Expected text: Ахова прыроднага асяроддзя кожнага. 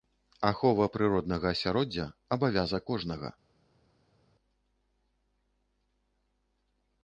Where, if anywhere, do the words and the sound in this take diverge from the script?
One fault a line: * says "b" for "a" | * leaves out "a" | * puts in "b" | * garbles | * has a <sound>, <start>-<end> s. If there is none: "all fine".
* puts in "абавязак"